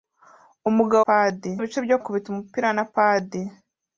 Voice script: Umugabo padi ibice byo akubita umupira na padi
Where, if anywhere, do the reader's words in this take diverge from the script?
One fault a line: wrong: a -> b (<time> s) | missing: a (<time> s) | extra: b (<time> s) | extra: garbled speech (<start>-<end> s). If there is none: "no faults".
no faults